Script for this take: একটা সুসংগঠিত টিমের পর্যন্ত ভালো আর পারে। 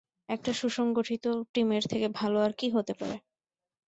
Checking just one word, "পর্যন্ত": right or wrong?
wrong